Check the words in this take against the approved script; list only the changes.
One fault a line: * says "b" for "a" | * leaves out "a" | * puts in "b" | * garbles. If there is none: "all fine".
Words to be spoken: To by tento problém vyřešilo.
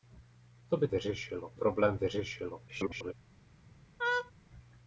* says "vyřešilo" for "tento"
* garbles